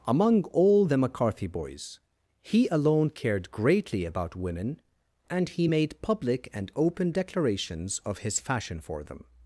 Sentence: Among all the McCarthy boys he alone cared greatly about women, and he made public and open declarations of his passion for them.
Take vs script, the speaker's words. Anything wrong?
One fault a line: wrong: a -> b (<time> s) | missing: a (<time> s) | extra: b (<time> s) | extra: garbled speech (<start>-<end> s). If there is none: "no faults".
wrong: passion -> fashion (8.4 s)